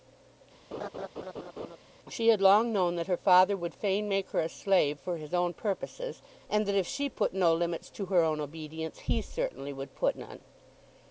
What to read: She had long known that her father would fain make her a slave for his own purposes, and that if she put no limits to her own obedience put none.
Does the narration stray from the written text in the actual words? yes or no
yes